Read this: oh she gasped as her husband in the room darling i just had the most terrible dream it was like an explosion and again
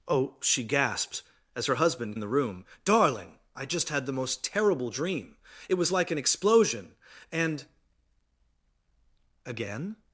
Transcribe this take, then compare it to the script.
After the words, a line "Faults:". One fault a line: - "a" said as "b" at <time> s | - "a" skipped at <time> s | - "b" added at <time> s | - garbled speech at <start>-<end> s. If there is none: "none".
oh she gasped as her husband in the room darling i just had the most terrible dream it was like an explosion and again
Faults:
none